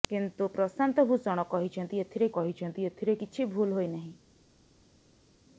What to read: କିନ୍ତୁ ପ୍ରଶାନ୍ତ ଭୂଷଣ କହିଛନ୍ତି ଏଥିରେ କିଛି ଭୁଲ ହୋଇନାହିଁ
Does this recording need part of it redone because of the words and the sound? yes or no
yes